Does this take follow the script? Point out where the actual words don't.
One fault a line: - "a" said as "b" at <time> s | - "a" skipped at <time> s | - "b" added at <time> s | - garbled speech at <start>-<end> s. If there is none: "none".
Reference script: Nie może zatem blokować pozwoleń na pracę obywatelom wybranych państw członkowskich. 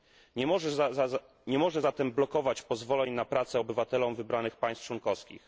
none